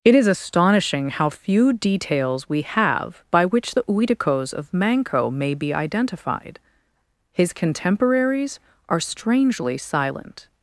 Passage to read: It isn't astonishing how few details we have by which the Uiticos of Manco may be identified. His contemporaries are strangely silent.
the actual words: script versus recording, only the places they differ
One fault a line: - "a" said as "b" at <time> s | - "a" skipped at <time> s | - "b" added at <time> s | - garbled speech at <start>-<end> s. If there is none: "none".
- "isn't" said as "is" at 0.1 s